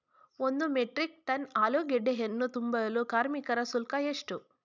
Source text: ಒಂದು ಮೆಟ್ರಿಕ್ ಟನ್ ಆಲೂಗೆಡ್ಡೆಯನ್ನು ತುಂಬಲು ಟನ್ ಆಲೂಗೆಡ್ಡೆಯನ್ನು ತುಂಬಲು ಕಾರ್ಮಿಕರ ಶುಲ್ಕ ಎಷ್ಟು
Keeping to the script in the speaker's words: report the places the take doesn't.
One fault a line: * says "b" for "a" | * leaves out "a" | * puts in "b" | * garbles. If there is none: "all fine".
* leaves out "ಟನ್ ಆಲೂಗೆಡ್ಡೆಯನ್ನು ತುಂಬಲು"